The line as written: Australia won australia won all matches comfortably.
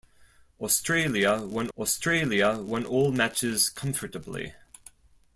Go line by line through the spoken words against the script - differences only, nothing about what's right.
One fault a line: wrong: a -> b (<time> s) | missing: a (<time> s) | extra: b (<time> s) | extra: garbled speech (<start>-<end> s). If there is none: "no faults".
no faults